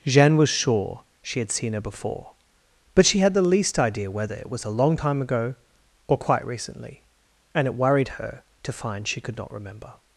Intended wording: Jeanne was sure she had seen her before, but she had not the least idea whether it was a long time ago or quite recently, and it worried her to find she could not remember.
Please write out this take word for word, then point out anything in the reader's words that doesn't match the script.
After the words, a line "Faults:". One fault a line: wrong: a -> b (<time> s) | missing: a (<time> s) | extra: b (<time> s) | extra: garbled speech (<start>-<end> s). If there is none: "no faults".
Jeanne was sure she had seen her before, but she had the least idea whether it was a long time ago or quite recently, and it worried her to find she could not remember.
Faults:
missing: not (3.4 s)